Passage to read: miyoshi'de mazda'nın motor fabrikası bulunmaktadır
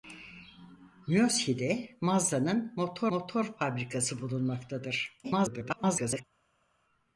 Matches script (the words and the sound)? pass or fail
fail